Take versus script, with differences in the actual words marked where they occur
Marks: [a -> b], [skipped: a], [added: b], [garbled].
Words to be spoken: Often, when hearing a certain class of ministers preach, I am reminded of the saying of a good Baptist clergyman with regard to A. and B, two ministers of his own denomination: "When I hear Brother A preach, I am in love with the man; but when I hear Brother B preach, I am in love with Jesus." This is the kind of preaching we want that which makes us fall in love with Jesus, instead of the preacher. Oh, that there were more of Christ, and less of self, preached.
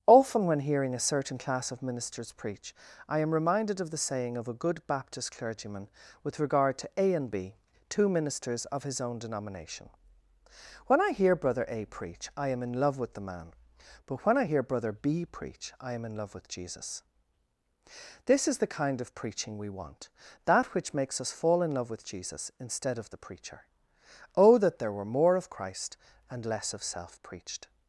Often, when hearing a certain class of ministers preach, I am reminded of the saying of a good Baptist clergyman with regard to A. and B, two ministers of his own denomination: "When I hear Brother A preach, I am in love with the man; but when I hear Brother B preach, I am in love with Jesus." This is the kind of preaching we want that which makes us fall in love with Jesus, instead of the preacher. Oh, that there were more of Christ, and less of self, preached.